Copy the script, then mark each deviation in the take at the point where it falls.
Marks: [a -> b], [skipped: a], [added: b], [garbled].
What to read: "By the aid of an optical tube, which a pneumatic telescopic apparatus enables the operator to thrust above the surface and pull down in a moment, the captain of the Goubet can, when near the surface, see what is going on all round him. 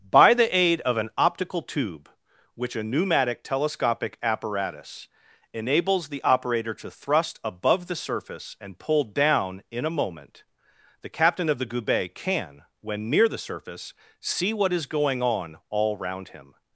"By the aid of an optical tube, which a pneumatic telescopic apparatus enables the operator to thrust above the surface and pull down in a moment, the captain of the Goubet can, when near the surface, see what is going on all round him.